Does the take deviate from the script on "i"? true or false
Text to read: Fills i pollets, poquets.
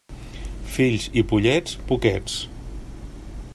false